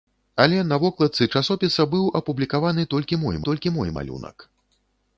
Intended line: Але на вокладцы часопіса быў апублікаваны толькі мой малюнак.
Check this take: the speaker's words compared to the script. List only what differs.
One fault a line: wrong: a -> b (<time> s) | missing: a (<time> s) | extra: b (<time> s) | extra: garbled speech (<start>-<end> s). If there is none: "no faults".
extra: толькі мой (3.5 s)